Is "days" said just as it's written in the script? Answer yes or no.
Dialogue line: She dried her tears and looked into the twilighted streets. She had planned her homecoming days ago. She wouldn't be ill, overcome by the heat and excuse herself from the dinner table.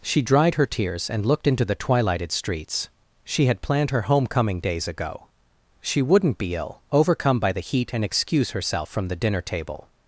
yes